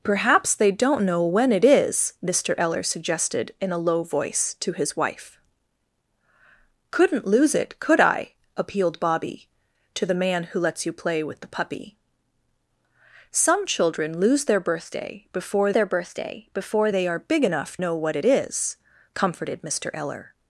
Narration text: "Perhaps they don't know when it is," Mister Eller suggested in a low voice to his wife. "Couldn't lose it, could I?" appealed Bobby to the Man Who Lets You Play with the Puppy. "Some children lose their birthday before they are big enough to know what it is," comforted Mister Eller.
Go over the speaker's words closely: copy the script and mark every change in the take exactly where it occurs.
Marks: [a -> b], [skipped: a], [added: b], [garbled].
"Perhaps they don't know when it is," Mister Eller suggested in a low voice to his wife. "Couldn't lose it, could I?" appealed Bobby to the Man Who Lets You Play with the Puppy. "Some children lose their birthday before [added: their birthday before] they are big enough [skipped: to] know what it is," comforted Mister Eller.